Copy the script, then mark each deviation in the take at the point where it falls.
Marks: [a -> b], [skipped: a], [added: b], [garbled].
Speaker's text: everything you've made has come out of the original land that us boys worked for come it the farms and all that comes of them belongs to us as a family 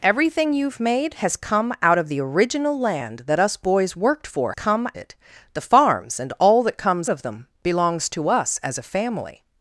everything you've made has come out of the original land that us boys worked for come it the farms and all that comes of them belongs to us as a family